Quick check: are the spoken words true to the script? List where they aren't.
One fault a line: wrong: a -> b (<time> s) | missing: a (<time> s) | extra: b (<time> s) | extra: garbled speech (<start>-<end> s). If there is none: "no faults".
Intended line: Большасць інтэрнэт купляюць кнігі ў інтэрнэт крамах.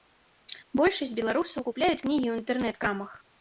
wrong: інтэрнэт -> беларусаў (1.2 s)